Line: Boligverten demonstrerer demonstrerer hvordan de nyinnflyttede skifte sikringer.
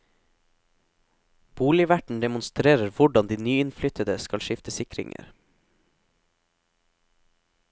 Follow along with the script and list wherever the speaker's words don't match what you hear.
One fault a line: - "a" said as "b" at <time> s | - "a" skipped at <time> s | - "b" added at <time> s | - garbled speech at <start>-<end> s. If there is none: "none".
- "demonstrerer" skipped at 2.9 s
- "skal" added at 4.2 s